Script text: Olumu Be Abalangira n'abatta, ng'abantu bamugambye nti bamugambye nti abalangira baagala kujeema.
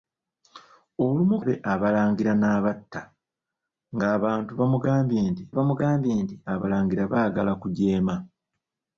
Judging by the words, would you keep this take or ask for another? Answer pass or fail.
pass